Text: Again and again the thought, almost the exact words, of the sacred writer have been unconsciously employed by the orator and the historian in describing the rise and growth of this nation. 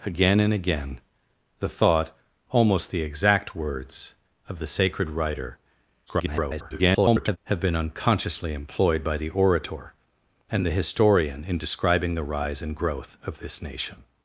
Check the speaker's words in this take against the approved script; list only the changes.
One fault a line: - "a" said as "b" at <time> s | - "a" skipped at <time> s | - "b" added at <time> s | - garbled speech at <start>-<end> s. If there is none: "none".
- garbled speech at 6.1-7.4 s